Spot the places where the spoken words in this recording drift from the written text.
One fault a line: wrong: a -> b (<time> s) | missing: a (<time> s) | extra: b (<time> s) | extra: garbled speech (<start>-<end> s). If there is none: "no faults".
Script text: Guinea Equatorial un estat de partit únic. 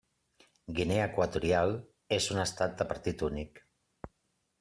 extra: és (2.2 s)